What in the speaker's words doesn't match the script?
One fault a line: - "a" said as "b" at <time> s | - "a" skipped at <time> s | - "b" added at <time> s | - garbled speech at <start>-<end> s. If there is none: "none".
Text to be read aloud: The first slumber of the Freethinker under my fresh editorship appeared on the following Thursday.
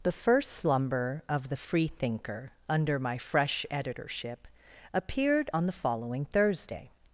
none